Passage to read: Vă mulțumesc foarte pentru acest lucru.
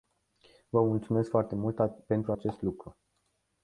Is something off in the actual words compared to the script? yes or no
yes